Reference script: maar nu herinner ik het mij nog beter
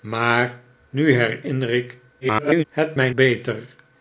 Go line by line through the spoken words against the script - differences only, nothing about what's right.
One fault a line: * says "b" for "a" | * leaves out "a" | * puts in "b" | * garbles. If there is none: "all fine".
* garbles
* leaves out "nog"